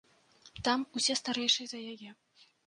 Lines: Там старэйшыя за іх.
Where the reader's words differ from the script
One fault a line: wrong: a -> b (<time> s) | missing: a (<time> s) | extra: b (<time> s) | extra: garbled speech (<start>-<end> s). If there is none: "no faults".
extra: усе (1.0 s)
wrong: іх -> яе (1.9 s)